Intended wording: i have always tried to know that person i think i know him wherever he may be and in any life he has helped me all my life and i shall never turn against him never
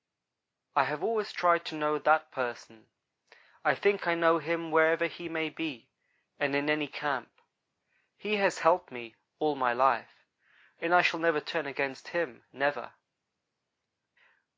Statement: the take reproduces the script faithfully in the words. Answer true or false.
false